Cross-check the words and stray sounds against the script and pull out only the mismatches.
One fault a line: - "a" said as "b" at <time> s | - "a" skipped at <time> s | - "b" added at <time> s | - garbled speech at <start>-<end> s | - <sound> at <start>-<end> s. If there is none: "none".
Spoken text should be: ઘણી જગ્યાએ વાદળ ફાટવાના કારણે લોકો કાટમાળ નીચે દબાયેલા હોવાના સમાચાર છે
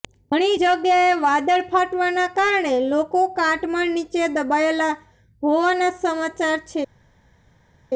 none